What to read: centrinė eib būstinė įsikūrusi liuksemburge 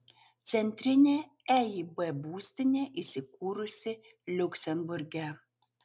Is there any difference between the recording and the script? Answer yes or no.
no